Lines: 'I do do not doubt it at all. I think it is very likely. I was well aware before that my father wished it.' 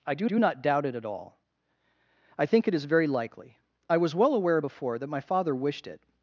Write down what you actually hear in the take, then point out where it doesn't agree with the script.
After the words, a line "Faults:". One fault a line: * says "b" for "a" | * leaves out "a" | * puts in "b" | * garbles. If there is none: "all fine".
'I do do not doubt it at all. I think it is very likely. I was well aware before that my father wished it.'
Faults:
all fine